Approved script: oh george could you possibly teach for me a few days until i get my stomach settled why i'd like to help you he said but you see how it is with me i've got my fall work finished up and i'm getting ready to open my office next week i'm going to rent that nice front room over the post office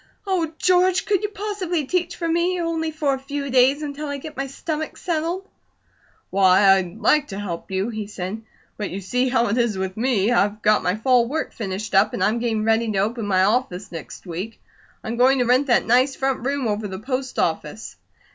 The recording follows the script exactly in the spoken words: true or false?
false